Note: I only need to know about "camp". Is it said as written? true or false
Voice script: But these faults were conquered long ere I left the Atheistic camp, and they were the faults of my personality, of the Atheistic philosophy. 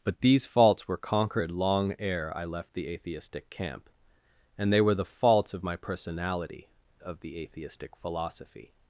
true